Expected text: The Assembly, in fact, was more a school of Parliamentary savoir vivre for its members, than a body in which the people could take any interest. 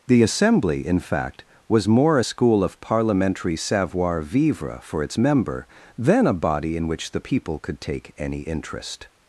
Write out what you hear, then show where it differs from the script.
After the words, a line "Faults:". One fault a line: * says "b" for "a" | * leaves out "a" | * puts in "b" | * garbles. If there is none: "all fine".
The Assembly, in fact, was more a school of Parliamentary savoir vivre for its member, than a body in which the people could take any interest.
Faults:
* says "member" for "members"